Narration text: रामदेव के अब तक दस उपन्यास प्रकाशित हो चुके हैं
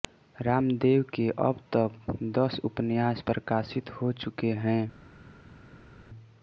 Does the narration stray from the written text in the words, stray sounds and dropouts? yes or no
no